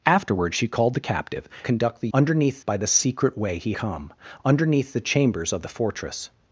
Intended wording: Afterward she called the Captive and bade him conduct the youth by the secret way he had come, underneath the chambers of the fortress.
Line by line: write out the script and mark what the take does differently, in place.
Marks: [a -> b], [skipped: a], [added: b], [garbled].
Afterward she called the Captive [skipped: and bade him] conduct the [youth -> underneath] by the secret way he [skipped: had] come, underneath the chambers of the fortress.